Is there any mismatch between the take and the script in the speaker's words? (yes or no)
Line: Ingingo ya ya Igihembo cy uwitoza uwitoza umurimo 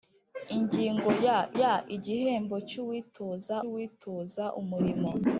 no